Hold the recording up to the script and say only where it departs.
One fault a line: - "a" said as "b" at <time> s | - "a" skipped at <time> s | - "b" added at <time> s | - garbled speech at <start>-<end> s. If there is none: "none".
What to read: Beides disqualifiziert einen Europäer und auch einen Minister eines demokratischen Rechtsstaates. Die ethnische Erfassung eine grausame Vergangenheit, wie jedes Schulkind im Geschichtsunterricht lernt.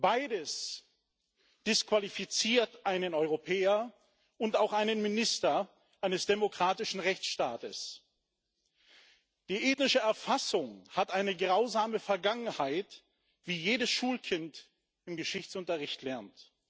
- "hat" added at 10.9 s